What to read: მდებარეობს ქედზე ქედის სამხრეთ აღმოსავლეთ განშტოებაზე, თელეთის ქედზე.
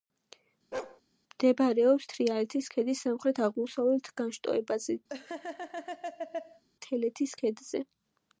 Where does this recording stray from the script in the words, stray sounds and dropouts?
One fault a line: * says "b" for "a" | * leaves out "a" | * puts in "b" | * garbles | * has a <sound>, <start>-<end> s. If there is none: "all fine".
* has a bark, 0.7-1.0 s
* says "თრიალეთის" for "ქედზე"
* has a laugh, 5.1-6.6 s